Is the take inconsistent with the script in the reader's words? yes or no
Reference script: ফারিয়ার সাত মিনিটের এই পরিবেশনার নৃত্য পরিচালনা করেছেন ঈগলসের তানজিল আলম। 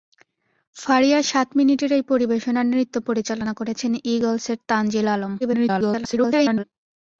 yes